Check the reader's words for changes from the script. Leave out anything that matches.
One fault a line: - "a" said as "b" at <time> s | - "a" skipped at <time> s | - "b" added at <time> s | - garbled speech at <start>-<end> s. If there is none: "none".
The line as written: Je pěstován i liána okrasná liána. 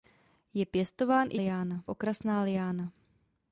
none